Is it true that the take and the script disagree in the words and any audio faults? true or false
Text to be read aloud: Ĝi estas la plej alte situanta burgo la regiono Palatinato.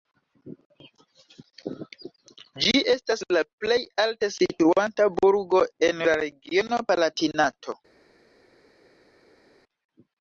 true